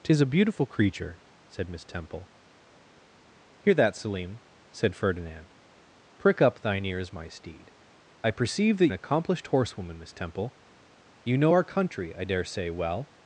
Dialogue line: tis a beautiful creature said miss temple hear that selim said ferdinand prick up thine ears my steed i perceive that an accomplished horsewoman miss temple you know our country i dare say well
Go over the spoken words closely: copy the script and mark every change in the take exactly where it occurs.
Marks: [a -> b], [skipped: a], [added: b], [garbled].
tis a beautiful creature said miss temple hear that selim said ferdinand prick up thine ears my steed i perceive that an accomplished horsewoman miss temple you know our country i dare say well